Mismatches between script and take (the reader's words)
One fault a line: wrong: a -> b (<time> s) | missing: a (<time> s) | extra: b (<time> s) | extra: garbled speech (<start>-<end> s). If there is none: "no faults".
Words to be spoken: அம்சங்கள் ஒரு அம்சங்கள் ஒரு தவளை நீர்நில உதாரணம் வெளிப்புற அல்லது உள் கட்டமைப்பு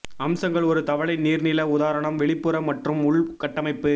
missing: அம்சங்கள் ஒரு (0.8 s)
wrong: அல்லது -> மற்றும் (2.6 s)